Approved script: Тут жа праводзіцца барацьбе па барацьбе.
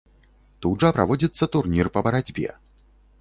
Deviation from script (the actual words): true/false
true